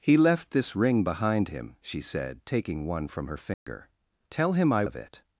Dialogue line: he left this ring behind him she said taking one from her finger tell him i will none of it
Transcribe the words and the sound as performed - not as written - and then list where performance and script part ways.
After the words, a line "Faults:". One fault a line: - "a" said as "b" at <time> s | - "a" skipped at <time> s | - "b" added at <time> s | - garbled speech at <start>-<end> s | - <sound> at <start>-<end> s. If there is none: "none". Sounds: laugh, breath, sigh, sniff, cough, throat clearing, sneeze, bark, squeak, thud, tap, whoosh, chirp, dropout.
he left this ring behind him she said taking one from her finger tell him i of it
Faults:
- dropout at 3.5-3.7 s
- "will none" skipped at 4.8 s